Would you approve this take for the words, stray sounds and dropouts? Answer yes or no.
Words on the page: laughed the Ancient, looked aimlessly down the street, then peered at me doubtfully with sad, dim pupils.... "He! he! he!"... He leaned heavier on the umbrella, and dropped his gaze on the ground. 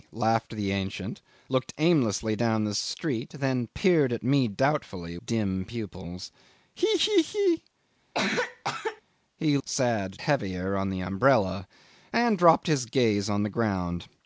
no